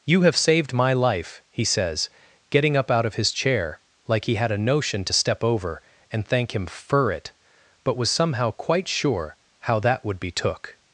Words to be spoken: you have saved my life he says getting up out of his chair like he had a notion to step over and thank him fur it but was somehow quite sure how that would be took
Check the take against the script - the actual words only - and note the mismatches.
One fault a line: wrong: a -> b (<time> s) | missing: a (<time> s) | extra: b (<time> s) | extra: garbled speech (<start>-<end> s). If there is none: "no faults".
no faults